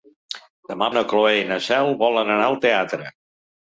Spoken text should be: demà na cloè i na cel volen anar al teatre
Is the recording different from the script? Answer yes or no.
no